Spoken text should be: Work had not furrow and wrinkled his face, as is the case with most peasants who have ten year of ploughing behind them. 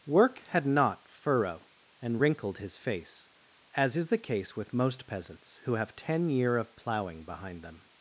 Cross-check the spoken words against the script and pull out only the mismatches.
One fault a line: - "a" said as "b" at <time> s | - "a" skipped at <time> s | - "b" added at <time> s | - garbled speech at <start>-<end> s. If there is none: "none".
none